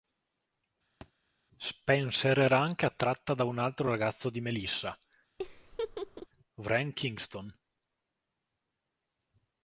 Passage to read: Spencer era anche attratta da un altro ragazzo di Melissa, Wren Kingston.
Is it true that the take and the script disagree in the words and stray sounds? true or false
true